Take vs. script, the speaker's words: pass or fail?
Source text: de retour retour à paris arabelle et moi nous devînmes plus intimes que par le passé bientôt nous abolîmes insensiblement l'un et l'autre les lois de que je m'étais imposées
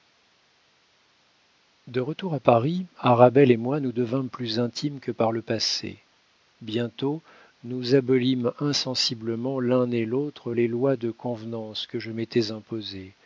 fail